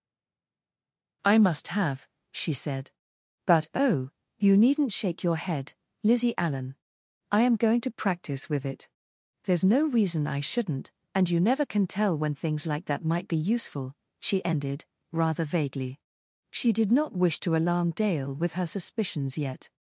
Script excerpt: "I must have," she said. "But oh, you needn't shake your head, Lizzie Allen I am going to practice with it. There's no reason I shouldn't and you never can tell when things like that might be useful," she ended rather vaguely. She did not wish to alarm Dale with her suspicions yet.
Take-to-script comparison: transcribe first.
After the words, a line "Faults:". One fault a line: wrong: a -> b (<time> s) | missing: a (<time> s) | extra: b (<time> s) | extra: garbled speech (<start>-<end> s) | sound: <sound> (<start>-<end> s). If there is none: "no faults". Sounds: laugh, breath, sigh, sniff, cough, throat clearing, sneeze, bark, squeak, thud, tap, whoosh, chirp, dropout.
"I must have," she said. "But oh, you needn't shake your head, Lizzie Allen I am going to practice with it. There's no reason I shouldn't and you never can tell when things like that might be useful," she ended rather vaguely. She did not wish to alarm Dale with her suspicions yet.
Faults:
no faults